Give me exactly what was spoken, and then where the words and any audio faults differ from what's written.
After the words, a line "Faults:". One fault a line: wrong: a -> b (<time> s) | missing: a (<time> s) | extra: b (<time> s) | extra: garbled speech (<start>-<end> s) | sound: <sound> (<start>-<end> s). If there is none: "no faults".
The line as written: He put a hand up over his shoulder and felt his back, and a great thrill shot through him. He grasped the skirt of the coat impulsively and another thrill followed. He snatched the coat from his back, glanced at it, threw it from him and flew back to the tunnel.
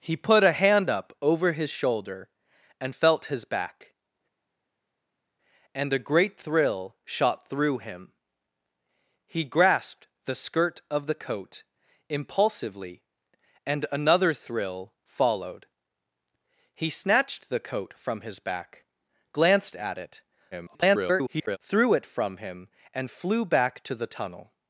He put a hand up over his shoulder and felt his back, and a great thrill shot through him. He grasped the skirt of the coat impulsively and another thrill followed. He snatched the coat from his back, glanced at it, [garbled] threw it from him and flew back to the tunnel.
Faults:
extra: garbled speech (20.5-21.6 s)